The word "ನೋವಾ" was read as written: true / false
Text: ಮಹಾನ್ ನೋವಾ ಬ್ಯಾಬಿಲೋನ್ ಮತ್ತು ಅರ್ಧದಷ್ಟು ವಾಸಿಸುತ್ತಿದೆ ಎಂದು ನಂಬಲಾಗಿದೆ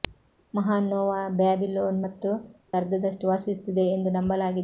true